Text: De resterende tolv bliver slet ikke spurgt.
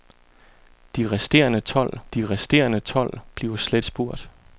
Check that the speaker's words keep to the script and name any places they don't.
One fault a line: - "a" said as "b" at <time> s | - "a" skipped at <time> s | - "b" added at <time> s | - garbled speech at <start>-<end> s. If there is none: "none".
- "de resterende tolv" added at 2.1 s
- "ikke" skipped at 3.8 s